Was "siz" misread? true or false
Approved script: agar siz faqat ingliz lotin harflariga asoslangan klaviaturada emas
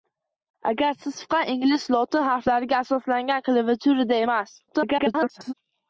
false